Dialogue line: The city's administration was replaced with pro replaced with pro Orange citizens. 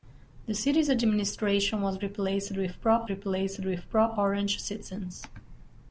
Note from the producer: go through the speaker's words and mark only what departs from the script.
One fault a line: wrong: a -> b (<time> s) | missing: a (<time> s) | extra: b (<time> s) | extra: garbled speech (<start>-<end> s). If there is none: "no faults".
no faults